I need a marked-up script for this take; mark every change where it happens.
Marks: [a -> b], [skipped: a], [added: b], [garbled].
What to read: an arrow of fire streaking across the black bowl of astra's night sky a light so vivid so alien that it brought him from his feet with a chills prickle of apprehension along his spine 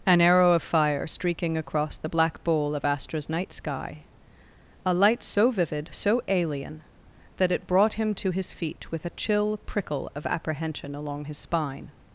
an arrow of fire streaking across the black bowl of astra's night sky a light so vivid so alien that it brought him [from -> to] his feet with a [chills -> chill] prickle of apprehension along his spine